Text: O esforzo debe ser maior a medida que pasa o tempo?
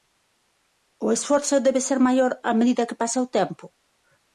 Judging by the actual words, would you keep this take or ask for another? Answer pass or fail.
pass